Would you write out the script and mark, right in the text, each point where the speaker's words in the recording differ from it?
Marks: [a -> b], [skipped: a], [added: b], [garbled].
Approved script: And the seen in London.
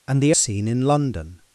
And the seen in London.